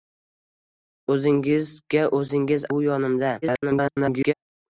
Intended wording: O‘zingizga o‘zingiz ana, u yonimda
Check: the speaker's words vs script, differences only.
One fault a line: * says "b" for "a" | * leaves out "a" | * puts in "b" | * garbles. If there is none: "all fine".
* leaves out "ana"
* garbles